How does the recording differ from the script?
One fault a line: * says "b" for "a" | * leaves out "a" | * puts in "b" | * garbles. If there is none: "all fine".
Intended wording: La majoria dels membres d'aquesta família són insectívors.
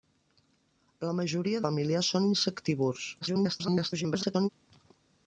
* leaves out "dels membres d'aquesta"
* garbles